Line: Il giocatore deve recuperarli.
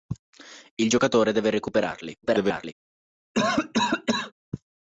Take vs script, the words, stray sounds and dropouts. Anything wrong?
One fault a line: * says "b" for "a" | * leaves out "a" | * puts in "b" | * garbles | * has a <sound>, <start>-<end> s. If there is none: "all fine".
* garbles
* has a cough, 3.3-4.3 s